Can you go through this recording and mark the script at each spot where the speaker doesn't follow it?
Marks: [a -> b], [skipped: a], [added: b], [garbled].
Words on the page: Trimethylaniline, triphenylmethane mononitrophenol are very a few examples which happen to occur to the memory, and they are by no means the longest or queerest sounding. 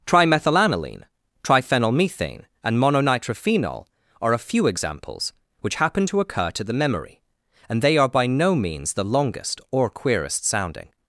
Trimethylaniline, triphenylmethane [added: and] mononitrophenol are [skipped: very] a few examples which happen to occur to the memory, and they are by no means the longest or queerest sounding.